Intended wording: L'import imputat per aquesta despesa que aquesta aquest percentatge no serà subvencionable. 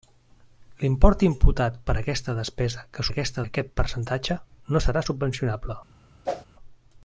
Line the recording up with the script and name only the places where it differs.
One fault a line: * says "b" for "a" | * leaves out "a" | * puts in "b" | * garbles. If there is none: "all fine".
all fine